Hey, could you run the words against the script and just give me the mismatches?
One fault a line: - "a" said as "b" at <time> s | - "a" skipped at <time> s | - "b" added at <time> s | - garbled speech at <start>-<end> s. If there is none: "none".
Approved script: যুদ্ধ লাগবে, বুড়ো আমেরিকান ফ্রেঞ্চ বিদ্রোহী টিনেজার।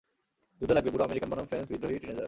- "বনাম" added at 1.3 s